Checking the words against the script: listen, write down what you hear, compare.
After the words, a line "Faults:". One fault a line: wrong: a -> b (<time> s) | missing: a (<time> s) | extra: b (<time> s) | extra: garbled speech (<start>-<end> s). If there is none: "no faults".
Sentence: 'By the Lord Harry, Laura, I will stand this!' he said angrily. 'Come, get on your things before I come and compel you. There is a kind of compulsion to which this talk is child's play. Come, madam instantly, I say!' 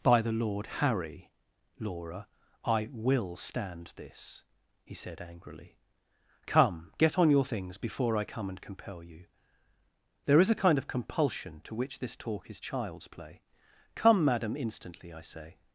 'By the Lord Harry, Laura, I will stand this!' he said angrily. 'Come, get on your things before I come and compel you. There is a kind of compulsion to which this talk is child's play. Come, madam instantly, I say!'
Faults:
no faults